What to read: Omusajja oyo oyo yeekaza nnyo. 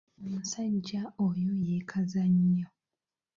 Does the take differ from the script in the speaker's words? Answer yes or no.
yes